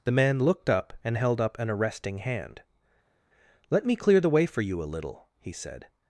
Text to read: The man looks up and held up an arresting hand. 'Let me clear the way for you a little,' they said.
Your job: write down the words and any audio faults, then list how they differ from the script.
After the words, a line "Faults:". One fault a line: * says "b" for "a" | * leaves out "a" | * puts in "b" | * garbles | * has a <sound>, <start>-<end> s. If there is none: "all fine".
The man looked up and held up an arresting hand. 'Let me clear the way for you a little,' he said.
Faults:
* says "looked" for "looks"
* says "he" for "they"